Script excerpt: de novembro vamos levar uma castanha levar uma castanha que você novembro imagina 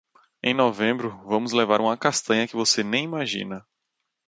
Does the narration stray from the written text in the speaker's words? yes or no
yes